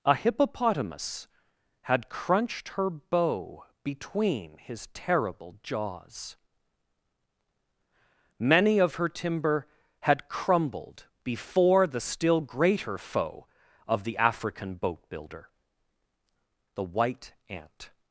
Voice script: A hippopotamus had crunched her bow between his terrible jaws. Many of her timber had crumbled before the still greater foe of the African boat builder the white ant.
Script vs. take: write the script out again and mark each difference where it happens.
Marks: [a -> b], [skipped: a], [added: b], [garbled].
A hippopotamus had crunched her bow between his terrible jaws. Many of her timber had crumbled before the still greater foe of the African boat builder the white ant.